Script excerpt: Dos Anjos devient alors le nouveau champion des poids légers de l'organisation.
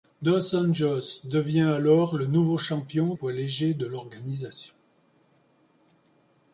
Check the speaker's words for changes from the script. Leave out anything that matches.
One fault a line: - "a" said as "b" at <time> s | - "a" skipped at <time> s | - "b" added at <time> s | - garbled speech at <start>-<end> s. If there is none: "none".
- "des" skipped at 3.1 s